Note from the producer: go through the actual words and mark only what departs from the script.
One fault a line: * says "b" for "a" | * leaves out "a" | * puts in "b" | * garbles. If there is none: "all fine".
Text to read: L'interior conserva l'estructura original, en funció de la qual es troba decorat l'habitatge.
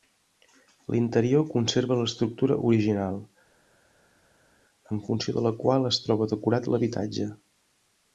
all fine